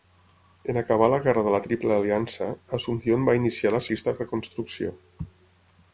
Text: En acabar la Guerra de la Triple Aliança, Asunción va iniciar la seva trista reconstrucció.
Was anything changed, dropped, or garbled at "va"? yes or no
no